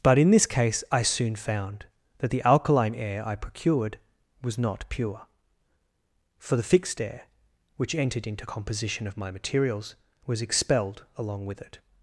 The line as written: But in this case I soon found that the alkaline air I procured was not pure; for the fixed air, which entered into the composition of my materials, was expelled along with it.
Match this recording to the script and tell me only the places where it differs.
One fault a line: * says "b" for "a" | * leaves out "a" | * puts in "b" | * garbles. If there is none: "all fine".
* leaves out "the"